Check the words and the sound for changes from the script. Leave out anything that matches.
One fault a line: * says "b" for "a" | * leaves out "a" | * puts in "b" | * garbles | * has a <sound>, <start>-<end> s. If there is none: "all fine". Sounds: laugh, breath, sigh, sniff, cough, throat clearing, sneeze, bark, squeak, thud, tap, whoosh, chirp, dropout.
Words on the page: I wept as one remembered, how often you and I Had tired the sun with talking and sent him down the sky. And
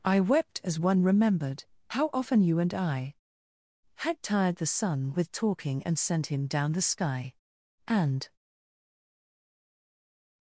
all fine